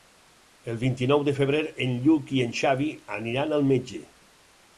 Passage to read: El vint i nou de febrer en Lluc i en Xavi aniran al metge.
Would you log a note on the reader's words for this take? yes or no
no